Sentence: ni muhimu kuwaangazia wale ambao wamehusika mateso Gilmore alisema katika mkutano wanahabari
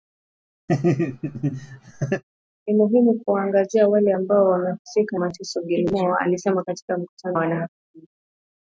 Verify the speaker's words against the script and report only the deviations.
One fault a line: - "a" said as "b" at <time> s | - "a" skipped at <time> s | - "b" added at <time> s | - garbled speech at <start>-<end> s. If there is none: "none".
none